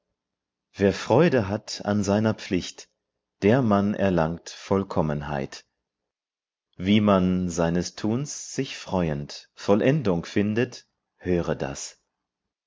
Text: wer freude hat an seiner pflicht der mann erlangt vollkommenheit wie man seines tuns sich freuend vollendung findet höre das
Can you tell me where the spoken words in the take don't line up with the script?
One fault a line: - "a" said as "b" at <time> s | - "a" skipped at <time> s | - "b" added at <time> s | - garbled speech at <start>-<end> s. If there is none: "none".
none